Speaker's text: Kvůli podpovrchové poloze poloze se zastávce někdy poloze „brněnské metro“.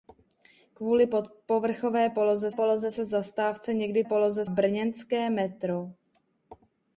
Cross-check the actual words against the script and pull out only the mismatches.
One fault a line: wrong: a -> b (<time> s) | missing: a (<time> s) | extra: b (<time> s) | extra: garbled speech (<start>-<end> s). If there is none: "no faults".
no faults